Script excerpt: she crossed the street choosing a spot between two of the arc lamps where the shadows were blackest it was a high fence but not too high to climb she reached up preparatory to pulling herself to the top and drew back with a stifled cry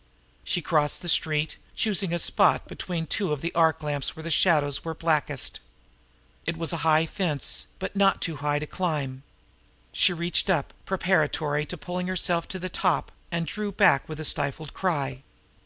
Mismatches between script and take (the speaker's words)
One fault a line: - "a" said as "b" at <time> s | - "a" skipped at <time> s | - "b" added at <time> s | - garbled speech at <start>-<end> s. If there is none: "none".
none